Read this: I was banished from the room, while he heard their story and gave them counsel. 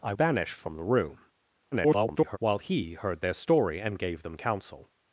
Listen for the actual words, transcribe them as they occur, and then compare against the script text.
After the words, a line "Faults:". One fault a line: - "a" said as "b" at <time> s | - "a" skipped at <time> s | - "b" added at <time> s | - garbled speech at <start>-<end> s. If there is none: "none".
I banished from the room, [garbled] while he heard their story and gave them counsel.
Faults:
- "was" skipped at 0.1 s
- garbled speech at 1.7-2.4 s